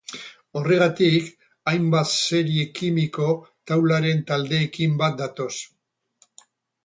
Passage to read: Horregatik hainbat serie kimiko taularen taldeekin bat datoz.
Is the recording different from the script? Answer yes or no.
no